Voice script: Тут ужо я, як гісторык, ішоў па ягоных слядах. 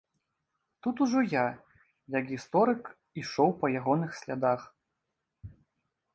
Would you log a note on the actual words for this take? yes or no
no